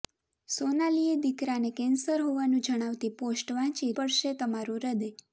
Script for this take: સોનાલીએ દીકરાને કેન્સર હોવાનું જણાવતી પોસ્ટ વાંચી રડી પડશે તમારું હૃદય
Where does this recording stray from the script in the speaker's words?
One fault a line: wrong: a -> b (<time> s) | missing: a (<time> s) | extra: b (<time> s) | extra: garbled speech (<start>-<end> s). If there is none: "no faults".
missing: રડી (3.9 s)